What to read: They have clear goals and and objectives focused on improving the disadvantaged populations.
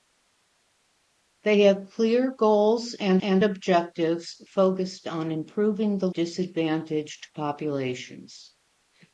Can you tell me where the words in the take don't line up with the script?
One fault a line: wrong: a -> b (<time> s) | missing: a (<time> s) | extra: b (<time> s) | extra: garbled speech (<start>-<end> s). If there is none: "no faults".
no faults